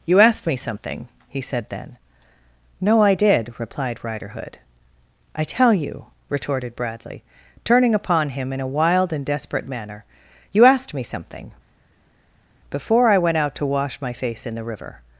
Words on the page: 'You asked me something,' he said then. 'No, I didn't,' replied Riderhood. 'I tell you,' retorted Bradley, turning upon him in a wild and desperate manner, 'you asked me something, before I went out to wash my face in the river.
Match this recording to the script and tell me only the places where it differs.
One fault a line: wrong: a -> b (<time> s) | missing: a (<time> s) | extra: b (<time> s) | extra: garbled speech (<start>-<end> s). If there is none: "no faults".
wrong: didn't -> did (3.1 s)